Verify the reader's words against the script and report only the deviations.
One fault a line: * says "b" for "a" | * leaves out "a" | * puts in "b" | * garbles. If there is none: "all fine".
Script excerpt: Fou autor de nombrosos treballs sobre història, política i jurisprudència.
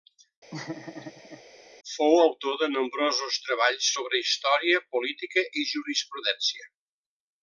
all fine